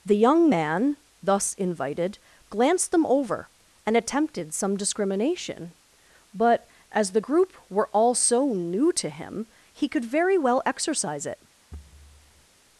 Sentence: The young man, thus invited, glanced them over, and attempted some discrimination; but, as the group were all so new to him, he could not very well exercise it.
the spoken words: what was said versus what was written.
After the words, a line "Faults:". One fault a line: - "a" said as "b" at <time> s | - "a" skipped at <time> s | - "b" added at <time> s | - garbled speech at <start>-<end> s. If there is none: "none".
The young man, thus invited, glanced them over, and attempted some discrimination; but, as the group were all so new to him, he could very well exercise it.
Faults:
- "not" skipped at 10.0 s